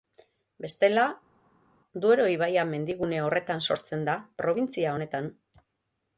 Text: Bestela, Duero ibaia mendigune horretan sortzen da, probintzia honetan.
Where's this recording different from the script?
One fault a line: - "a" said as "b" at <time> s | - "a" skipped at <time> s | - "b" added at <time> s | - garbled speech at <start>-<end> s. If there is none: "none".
none